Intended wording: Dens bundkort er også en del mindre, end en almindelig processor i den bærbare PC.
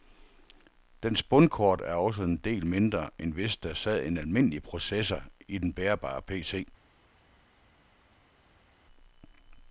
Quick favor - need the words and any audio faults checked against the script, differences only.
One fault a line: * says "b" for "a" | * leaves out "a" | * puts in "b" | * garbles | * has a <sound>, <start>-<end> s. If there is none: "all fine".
* puts in "hvis der sad"